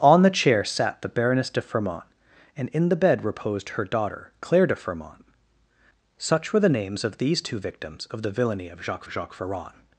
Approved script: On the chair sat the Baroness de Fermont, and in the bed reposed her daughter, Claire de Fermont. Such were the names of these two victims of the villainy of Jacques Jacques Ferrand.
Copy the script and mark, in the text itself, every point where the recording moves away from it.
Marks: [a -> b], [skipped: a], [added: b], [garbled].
On the chair sat the Baroness de Fermont, and in the bed reposed her daughter, Claire de Fermont. Such were the names of these two victims of the villainy of Jacques Jacques Ferrand.